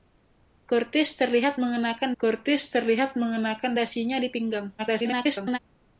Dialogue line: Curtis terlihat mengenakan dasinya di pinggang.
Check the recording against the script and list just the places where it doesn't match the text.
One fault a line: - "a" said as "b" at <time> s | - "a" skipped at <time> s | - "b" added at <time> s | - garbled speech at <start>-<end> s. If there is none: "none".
- "curtis terlihat mengenakan" added at 2.2 s
- garbled speech at 4.8-5.6 s